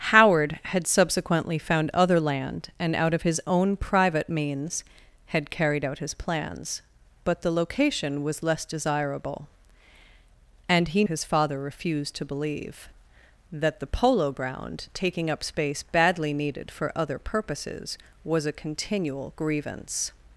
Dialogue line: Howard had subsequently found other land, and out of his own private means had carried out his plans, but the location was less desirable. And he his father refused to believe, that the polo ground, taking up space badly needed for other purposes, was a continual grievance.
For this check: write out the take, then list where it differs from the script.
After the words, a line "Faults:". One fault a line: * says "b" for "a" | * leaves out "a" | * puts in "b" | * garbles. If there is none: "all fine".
Howard had subsequently found other land, and out of his own private means had carried out his plans, but the location was less desirable. And he his father refused to believe, that the polo ground, taking up space badly needed for other purposes, was a continual grievance.
Faults:
all fine